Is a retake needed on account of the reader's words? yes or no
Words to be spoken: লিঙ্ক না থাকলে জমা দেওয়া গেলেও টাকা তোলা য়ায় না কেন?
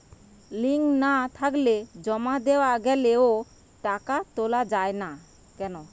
no